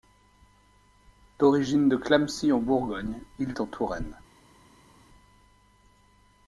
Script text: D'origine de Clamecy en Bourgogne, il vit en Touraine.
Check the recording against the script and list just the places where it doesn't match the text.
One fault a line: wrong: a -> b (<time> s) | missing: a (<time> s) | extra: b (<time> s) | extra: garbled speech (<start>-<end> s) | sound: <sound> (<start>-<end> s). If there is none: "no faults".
missing: vit (3.5 s)